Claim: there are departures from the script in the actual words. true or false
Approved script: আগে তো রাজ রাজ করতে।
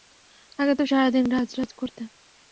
true